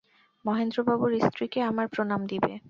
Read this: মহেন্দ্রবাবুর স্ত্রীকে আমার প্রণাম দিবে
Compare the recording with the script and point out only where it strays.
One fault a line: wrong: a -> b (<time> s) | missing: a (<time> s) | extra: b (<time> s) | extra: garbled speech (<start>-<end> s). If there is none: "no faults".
no faults